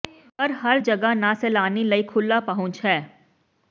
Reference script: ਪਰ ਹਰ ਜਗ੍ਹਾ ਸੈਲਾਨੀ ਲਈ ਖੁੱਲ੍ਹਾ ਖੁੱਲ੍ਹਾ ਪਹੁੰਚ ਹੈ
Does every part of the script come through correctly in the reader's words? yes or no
no